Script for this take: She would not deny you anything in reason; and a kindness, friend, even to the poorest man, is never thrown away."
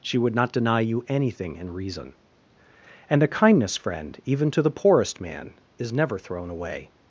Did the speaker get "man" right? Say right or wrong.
right